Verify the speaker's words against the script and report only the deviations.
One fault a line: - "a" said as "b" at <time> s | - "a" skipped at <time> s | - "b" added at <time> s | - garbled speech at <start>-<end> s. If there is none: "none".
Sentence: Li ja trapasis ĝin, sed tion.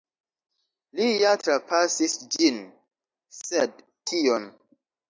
none